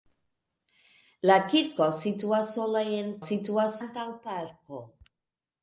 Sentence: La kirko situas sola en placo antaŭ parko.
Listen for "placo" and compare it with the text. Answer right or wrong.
wrong